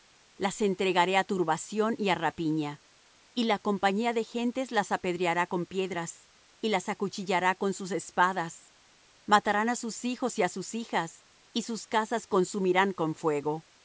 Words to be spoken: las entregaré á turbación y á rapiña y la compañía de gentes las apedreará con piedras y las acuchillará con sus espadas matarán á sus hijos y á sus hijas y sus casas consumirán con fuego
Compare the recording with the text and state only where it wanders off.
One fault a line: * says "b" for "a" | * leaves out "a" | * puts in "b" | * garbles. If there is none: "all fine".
all fine